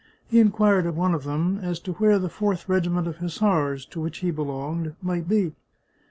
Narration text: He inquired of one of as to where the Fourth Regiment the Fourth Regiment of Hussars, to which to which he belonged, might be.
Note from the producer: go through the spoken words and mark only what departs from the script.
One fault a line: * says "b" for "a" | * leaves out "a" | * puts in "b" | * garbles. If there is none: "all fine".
* puts in "them"
* leaves out "the Fourth Regiment"
* leaves out "to which"